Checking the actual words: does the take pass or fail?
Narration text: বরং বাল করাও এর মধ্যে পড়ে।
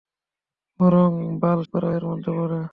pass